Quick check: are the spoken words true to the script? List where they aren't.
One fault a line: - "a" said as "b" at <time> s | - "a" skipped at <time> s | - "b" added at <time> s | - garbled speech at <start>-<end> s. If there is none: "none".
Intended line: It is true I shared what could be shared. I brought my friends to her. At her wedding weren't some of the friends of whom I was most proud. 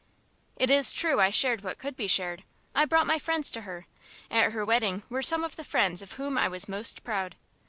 - "weren't" said as "were" at 5.1 s